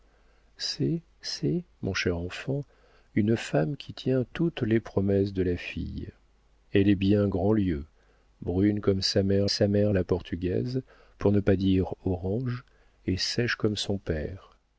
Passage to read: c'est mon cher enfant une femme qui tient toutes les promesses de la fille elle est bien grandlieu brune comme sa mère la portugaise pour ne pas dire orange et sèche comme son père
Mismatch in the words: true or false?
true